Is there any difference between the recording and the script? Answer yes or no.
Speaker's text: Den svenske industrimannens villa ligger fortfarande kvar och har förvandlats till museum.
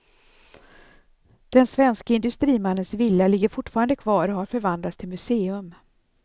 no